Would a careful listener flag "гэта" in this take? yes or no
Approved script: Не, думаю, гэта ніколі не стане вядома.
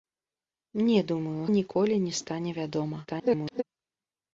yes